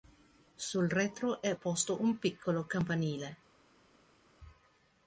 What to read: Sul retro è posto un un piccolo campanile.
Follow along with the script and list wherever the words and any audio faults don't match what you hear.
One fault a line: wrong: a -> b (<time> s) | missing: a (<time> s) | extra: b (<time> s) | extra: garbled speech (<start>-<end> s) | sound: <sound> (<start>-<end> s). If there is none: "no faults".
missing: un (2.2 s)